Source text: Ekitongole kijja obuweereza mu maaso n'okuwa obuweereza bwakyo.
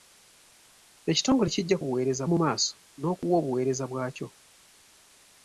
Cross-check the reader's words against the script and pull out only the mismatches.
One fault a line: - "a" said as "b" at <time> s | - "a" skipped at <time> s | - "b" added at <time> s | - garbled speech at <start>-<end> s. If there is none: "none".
none